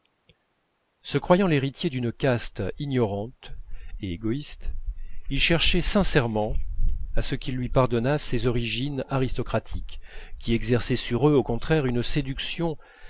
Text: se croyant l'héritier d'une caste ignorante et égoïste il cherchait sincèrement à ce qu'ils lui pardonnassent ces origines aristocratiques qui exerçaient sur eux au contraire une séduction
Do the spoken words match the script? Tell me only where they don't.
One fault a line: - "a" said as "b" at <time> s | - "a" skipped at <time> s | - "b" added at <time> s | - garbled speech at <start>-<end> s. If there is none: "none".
none